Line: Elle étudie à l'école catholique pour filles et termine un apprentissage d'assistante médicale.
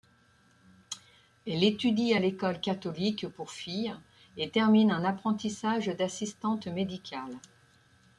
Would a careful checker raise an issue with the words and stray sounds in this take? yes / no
no